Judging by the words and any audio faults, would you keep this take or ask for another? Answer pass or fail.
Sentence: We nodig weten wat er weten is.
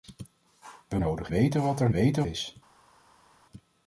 pass